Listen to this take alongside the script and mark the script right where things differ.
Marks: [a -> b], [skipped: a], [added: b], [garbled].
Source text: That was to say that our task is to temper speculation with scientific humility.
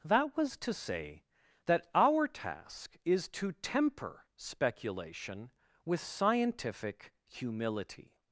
That was to say that our task is to temper speculation with scientific humility.